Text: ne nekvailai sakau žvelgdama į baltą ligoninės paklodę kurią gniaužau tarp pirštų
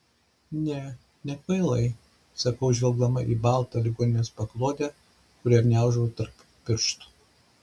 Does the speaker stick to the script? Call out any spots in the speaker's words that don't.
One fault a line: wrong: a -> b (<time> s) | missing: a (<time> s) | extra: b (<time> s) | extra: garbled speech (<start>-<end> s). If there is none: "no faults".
no faults